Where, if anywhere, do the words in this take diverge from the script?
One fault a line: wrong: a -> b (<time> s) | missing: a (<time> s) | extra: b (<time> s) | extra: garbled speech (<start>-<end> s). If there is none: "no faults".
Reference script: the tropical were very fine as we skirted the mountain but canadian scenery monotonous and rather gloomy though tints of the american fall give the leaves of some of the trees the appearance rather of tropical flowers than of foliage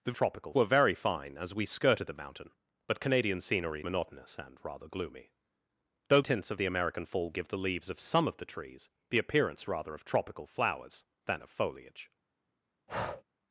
no faults